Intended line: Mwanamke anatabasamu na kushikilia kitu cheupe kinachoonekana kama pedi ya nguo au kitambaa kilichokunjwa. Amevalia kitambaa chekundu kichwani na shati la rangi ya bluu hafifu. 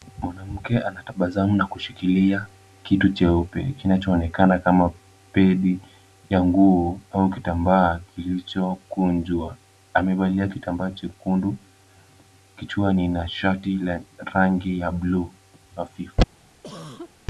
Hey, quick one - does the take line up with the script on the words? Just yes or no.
yes